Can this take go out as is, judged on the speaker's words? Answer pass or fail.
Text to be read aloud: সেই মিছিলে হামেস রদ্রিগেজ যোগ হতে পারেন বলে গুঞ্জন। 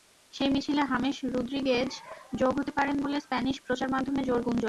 fail